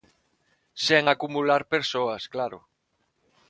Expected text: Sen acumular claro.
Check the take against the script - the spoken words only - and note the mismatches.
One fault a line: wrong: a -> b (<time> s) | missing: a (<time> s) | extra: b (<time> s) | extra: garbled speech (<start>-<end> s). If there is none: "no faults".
extra: persoas (1.7 s)